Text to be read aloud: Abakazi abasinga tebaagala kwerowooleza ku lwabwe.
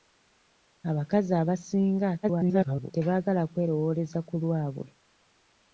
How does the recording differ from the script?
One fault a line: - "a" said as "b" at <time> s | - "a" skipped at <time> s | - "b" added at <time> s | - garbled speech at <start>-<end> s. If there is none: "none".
- garbled speech at 2.2-2.9 s